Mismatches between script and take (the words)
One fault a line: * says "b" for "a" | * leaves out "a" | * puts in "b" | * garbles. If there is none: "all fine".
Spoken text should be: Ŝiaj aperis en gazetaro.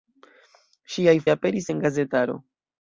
all fine